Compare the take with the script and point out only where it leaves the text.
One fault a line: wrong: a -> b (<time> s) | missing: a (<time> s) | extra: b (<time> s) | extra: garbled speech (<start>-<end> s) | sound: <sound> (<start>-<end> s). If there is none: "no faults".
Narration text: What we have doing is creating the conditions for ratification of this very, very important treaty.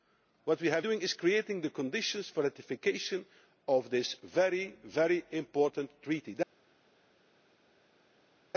no faults